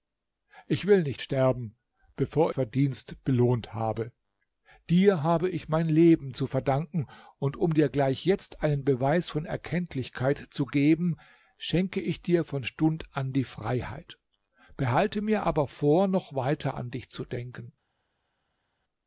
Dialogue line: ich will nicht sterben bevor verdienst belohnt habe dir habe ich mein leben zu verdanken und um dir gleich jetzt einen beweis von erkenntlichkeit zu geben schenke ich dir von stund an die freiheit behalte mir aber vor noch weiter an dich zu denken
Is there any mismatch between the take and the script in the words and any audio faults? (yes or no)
no